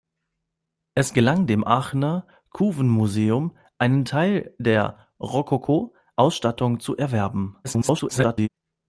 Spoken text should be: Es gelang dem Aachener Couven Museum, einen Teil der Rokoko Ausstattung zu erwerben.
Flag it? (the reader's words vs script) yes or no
yes